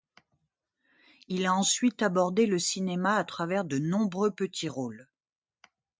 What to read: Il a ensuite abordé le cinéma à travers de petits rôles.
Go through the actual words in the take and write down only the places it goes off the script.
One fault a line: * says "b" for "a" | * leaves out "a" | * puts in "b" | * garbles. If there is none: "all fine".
* puts in "nombreux"